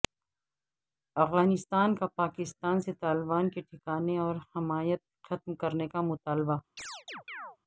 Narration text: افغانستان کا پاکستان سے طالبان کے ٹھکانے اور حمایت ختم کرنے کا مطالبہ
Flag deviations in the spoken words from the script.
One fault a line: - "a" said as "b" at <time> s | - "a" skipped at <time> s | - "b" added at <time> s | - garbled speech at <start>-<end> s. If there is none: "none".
none